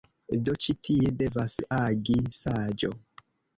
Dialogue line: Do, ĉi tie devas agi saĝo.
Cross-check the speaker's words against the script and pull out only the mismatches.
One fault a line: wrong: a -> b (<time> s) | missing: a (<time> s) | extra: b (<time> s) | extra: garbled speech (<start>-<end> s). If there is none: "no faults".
no faults